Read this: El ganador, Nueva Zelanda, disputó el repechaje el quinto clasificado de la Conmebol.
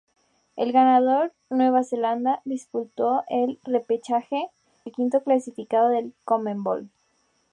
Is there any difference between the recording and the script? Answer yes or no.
no